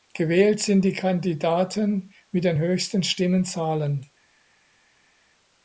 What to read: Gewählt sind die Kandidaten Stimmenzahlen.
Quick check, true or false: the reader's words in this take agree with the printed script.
false